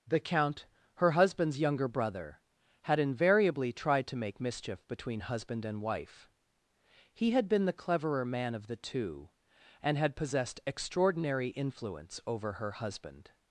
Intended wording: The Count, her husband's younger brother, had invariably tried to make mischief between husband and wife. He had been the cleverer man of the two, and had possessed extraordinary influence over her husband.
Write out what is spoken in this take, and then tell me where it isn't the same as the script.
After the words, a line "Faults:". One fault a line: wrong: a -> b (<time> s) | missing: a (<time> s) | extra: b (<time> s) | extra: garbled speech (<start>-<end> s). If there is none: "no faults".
The Count, her husband's younger brother, had invariably tried to make mischief between husband and wife. He had been the cleverer man of the two, and had possessed extraordinary influence over her husband.
Faults:
no faults